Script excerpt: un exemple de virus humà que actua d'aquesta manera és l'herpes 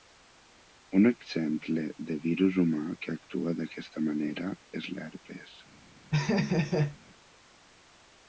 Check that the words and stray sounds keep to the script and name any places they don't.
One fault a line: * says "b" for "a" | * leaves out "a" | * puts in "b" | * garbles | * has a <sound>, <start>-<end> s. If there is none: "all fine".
* has a laugh, 6.1-7.0 s